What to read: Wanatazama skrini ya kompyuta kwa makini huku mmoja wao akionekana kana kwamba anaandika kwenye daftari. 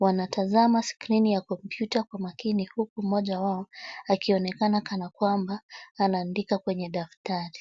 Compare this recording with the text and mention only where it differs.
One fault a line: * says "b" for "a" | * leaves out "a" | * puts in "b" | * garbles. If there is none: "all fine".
all fine